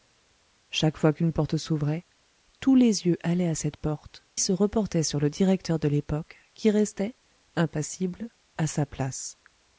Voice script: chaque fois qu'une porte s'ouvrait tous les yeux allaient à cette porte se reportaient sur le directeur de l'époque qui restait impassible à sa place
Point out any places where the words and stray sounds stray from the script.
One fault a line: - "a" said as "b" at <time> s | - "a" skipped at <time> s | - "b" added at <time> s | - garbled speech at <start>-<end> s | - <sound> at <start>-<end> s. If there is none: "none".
none